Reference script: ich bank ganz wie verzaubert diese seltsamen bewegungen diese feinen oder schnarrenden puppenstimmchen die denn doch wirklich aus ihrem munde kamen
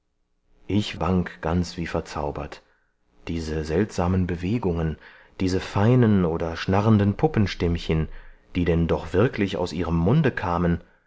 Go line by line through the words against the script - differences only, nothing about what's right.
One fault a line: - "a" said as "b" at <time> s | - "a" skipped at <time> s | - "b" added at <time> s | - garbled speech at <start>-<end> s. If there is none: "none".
none